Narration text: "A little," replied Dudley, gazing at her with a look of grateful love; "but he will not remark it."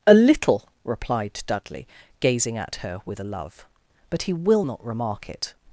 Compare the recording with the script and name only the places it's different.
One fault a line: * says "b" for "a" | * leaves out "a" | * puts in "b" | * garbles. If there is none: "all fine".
* leaves out "look of grateful"